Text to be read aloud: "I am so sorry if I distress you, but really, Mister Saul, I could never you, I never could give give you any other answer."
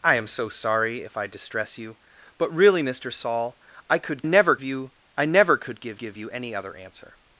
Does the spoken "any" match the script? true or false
true